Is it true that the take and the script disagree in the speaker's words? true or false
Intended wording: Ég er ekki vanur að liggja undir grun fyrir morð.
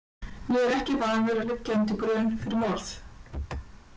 false